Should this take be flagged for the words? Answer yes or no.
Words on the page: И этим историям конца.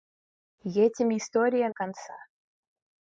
no